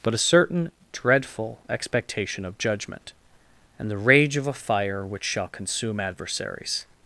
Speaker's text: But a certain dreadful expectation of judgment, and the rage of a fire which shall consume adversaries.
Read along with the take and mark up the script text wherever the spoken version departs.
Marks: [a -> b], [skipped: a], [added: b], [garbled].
But a certain dreadful expectation of judgment, and the rage of a fire which shall consume adversaries.